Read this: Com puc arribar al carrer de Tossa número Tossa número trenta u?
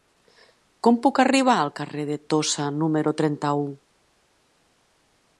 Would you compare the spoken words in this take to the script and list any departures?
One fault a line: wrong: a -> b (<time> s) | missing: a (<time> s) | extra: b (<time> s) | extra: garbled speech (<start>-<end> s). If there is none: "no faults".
missing: Tossa número (3.1 s)